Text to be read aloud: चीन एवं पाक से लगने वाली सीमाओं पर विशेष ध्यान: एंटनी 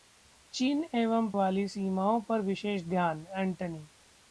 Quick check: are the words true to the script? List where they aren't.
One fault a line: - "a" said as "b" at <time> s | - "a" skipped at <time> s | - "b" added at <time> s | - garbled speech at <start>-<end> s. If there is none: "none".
- "पाक से लगने" skipped at 1.3 s